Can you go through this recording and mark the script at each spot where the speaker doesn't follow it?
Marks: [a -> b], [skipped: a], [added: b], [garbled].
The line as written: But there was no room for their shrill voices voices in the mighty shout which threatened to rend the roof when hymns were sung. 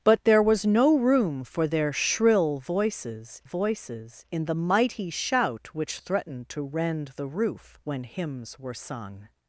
But there was no room for their shrill voices voices in the mighty shout which threatened to rend the roof when hymns were sung.